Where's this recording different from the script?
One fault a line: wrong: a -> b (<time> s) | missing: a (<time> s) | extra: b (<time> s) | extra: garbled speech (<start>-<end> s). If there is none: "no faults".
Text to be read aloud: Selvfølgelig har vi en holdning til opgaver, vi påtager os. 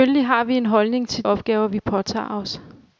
no faults